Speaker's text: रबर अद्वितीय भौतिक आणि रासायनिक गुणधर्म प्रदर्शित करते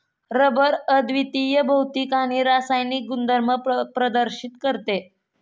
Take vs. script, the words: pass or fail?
pass